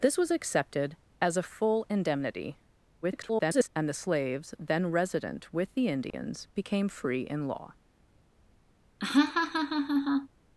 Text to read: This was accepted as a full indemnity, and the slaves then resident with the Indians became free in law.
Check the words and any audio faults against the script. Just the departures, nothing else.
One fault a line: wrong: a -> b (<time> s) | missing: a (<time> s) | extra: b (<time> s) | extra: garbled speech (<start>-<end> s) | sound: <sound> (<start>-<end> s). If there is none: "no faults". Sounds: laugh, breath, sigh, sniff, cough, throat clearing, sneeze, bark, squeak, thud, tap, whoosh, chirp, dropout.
extra: garbled speech (3.0-3.7 s)
sound: dropout (6.1-6.1 s)
sound: laugh (9.0-10.3 s)